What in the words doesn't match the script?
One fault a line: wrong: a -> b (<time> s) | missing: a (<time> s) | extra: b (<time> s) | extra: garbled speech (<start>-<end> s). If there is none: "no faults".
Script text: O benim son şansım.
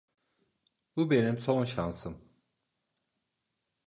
wrong: O -> Bu (0.9 s)